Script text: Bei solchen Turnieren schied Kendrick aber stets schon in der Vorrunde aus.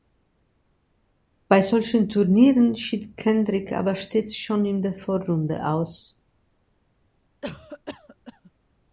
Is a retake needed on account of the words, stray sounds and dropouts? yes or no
yes